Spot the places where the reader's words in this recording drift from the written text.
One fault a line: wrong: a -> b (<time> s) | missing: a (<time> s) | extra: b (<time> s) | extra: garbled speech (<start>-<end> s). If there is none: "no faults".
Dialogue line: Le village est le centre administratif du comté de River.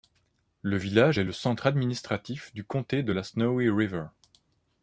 extra: la Snowy (3.1 s)